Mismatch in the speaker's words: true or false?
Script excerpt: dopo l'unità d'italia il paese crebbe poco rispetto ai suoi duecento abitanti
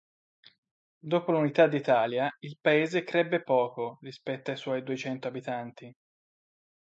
false